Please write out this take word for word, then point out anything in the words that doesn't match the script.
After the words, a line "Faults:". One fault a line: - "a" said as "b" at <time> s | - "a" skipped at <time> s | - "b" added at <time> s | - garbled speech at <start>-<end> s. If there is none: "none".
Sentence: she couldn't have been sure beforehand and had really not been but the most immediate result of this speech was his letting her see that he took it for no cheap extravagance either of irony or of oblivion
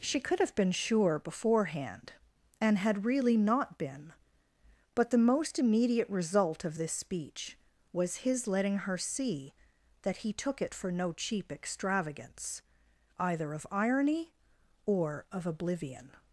she could have been sure beforehand and had really not been but the most immediate result of this speech was his letting her see that he took it for no cheap extravagance either of irony or of oblivion
Faults:
- "couldn't" said as "could" at 0.2 s